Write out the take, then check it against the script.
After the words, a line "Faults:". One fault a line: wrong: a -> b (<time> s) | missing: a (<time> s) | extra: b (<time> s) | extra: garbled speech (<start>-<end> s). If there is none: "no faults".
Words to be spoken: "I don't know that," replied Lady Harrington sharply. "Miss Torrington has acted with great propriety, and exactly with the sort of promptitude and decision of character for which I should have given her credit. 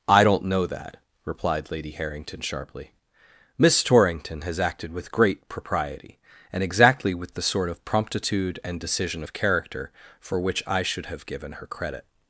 "I don't know that," replied Lady Harrington sharply. "Miss Torrington has acted with great propriety, and exactly with the sort of promptitude and decision of character for which I should have given her credit.
Faults:
no faults